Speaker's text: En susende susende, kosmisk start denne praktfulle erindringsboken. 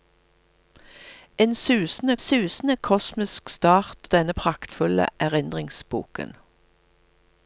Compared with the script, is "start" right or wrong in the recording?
right